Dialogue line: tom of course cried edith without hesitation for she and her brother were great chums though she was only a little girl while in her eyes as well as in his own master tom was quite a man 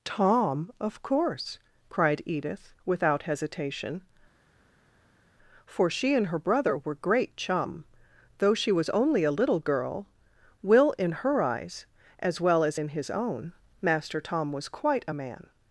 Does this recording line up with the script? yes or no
no